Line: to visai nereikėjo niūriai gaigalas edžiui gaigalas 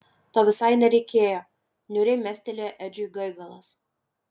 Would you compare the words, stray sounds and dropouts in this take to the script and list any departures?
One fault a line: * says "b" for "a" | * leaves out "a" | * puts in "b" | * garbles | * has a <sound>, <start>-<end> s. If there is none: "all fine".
* says "mestelėjo" for "gaigalas"